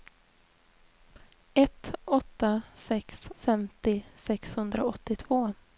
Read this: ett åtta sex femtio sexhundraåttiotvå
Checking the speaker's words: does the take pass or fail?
pass